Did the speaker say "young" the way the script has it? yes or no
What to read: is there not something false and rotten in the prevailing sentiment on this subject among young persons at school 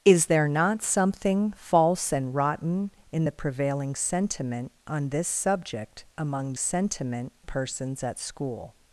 no